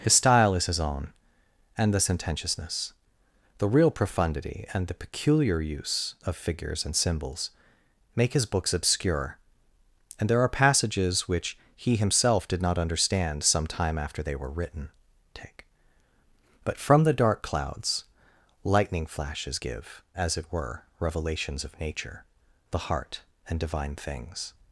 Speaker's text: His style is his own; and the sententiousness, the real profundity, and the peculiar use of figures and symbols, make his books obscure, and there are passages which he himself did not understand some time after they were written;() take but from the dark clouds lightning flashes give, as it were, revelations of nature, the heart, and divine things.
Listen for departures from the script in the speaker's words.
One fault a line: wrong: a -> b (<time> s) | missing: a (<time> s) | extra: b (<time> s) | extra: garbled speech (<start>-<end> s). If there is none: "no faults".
no faults